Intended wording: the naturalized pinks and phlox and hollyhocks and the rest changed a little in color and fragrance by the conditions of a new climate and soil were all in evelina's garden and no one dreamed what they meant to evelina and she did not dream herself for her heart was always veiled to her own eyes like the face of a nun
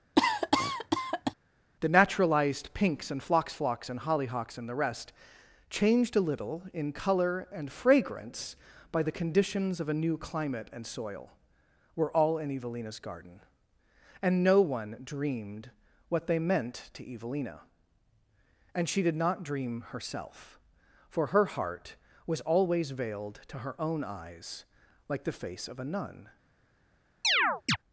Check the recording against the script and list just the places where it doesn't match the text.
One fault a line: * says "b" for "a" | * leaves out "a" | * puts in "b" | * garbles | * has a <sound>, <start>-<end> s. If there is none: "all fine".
* has a cough, 0.2-1.3 s
* puts in "phlox"
* has a chirp, 27.2-27.8 s